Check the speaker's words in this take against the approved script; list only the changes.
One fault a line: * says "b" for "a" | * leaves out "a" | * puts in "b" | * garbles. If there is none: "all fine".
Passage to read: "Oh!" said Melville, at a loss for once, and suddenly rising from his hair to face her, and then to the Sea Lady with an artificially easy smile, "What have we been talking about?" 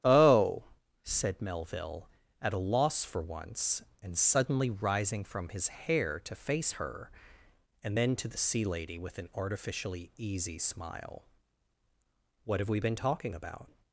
all fine